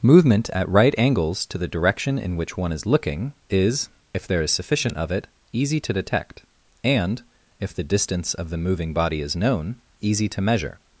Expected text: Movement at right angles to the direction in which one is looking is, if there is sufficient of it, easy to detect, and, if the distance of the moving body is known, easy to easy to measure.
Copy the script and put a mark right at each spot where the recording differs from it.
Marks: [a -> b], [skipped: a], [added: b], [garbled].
Movement at right angles to the direction in which one is looking is, if there is sufficient of it, easy to detect, and, if the distance of the moving body is known, easy to [skipped: easy to] measure.